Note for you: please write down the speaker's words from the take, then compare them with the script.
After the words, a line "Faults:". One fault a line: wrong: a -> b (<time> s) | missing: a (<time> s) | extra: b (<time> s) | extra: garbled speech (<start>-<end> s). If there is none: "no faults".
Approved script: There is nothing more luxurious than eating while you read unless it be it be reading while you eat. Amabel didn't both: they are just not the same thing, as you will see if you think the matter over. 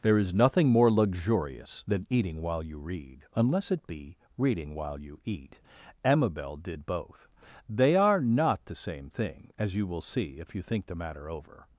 There is nothing more luxurious than eating while you read unless it be reading while you eat. Amabel did both: they are not the same thing, as you will see if you think the matter over.
Faults:
missing: it be (4.2 s)
wrong: didn't -> did (6.6 s)
missing: just (8.2 s)